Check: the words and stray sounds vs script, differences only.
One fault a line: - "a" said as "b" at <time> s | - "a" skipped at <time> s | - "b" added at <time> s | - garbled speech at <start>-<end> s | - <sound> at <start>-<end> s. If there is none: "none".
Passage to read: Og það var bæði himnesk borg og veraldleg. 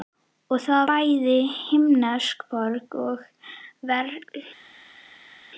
- "var" skipped at 0.9 s